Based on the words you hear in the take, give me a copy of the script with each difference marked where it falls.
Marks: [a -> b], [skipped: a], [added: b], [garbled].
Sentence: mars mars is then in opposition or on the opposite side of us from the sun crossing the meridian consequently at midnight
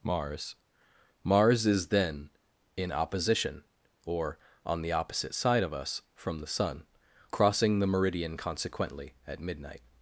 mars mars is then in opposition or on the opposite side of us from the sun crossing the meridian consequently at midnight